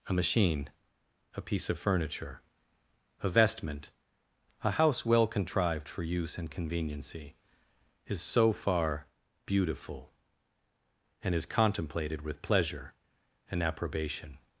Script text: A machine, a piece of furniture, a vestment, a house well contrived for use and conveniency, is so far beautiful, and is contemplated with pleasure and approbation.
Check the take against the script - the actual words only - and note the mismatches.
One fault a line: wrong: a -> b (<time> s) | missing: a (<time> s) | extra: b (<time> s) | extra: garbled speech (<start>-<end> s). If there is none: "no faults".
no faults